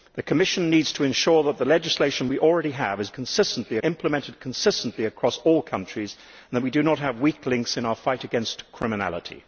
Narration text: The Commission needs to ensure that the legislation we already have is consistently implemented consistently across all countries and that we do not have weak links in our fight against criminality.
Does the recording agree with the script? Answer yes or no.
yes